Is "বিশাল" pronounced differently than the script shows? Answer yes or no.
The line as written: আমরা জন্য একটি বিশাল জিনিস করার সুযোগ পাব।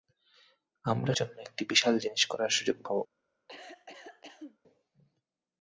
no